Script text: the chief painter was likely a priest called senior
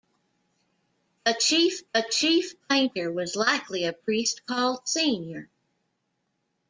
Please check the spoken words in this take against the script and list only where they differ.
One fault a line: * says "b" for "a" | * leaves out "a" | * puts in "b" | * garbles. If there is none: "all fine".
* puts in "the chief"